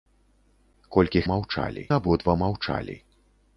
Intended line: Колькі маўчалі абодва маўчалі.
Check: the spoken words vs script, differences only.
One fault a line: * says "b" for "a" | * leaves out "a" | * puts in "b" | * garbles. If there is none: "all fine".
all fine